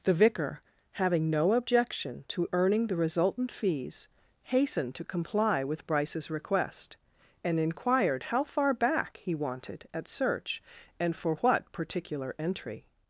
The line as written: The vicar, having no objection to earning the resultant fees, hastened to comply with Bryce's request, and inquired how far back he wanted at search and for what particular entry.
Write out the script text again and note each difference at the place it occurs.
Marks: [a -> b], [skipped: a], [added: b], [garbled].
The vicar, having no objection to earning the resultant fees, hastened to comply with Bryce's request, and inquired how far back he wanted at search and for what particular entry.